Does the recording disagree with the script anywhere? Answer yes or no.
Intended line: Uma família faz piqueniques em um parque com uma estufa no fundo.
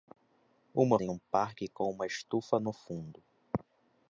yes